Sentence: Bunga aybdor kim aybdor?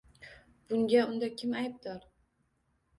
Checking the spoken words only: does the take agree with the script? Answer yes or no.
no